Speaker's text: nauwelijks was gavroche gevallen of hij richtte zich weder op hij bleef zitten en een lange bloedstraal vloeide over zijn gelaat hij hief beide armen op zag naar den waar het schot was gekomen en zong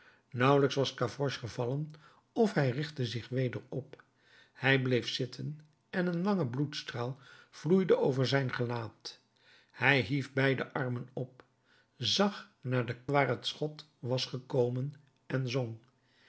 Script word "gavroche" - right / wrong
right